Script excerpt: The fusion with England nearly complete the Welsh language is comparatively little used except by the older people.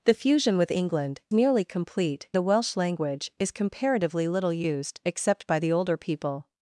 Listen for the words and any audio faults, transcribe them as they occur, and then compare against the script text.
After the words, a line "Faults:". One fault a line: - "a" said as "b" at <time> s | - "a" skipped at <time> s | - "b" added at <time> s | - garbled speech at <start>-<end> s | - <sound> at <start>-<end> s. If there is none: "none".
The fusion with England nearly complete the Welsh language is comparatively little used except by the older people.
Faults:
none